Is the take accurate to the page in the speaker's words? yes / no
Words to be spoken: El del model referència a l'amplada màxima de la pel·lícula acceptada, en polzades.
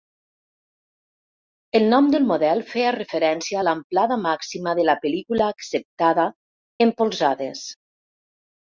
no